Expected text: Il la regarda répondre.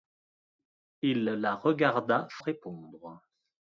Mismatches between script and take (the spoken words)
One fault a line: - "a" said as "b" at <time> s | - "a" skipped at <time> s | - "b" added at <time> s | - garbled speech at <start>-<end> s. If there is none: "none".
none